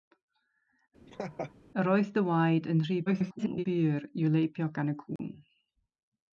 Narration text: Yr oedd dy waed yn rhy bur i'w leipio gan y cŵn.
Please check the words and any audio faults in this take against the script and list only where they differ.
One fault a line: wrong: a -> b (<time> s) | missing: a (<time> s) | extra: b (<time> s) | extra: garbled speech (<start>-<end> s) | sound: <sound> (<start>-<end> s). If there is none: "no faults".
sound: laugh (1.1-1.5 s)
extra: garbled speech (3.1-3.6 s)
sound: dropout (5.2-5.2 s)